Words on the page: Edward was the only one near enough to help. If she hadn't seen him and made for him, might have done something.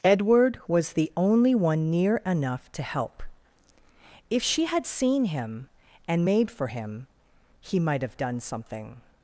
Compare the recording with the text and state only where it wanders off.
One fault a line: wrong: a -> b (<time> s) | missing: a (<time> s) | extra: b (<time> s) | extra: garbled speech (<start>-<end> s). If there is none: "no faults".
wrong: hadn't -> had (4.7 s)
extra: he (7.6 s)